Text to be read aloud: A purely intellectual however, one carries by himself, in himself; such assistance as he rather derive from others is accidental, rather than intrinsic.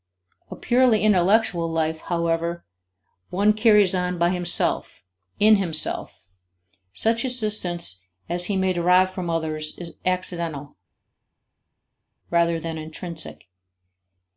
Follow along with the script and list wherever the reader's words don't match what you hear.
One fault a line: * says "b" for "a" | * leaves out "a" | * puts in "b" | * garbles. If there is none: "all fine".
* puts in "life"
* puts in "on"
* says "may" for "rather"